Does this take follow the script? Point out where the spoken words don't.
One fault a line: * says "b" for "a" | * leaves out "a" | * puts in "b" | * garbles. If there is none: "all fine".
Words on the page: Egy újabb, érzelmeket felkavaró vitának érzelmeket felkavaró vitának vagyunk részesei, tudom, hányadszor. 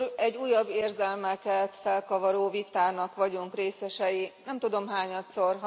* leaves out "érzelmeket felkavaró vitának"
* puts in "nem"